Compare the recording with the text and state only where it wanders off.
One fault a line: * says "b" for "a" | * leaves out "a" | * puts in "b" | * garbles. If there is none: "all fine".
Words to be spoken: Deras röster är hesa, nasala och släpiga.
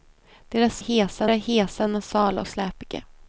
* says "hesa" for "röster"
* leaves out "och"